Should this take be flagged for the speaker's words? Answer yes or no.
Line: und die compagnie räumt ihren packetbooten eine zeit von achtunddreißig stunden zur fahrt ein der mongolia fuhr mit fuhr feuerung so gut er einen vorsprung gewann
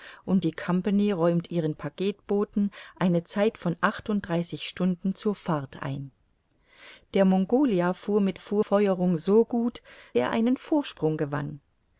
no